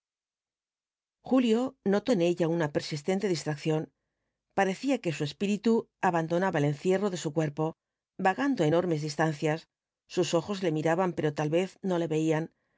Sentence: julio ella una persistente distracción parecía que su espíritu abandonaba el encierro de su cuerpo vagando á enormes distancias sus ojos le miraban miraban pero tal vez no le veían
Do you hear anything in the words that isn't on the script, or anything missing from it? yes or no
yes